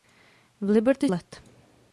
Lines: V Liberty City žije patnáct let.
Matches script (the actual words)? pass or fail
fail